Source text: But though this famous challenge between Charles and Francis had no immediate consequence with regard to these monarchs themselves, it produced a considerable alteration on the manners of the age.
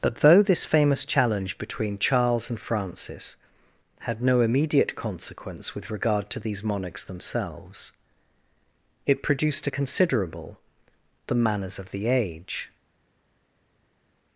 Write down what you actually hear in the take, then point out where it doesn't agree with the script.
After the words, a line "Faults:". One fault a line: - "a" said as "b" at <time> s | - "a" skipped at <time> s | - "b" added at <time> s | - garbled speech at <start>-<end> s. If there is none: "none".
But though this famous challenge between Charles and Francis had no immediate consequence with regard to these monarchs themselves, it produced a considerable the manners of the age.
Faults:
- "alteration on" skipped at 10.6 s